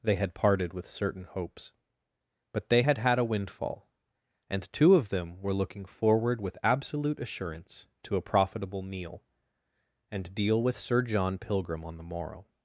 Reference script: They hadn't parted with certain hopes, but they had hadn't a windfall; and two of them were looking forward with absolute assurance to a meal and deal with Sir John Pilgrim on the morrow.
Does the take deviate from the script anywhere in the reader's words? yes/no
yes